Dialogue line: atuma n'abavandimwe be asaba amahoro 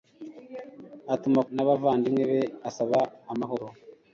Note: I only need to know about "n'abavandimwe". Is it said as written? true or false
true